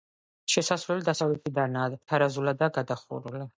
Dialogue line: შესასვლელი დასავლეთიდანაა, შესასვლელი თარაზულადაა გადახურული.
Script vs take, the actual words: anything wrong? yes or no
yes